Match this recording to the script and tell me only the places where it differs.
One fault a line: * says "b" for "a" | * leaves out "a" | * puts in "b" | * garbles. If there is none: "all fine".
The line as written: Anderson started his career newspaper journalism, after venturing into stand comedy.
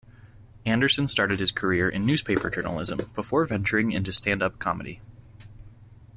* puts in "in"
* says "before" for "after"
* puts in "up"